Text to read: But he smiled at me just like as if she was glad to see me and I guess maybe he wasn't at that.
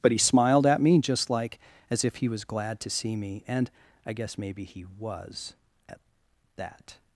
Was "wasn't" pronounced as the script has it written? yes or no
no